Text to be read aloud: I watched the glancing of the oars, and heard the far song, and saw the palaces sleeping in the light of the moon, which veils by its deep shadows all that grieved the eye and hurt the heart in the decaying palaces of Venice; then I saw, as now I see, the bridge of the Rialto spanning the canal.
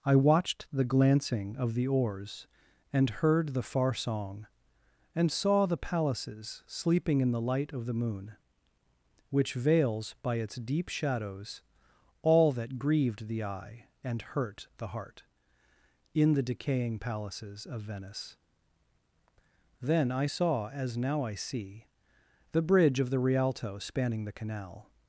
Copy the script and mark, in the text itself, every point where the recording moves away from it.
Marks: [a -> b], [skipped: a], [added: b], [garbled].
I watched the glancing of the oars, and heard the far song, and saw the palaces sleeping in the light of the moon, which veils by its deep shadows all that grieved the eye and hurt the heart in the decaying palaces of Venice; then I saw, as now I see, the bridge of the Rialto spanning the canal.